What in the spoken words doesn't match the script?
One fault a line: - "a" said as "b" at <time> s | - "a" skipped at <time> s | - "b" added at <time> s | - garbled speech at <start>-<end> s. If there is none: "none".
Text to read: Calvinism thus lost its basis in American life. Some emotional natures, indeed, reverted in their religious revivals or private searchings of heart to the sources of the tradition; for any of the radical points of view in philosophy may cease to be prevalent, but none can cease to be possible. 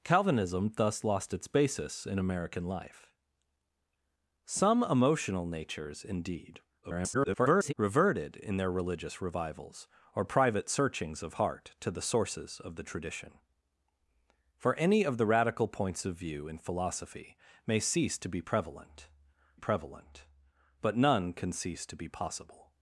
- garbled speech at 6.8-7.7 s
- "prevalent" added at 19.6 s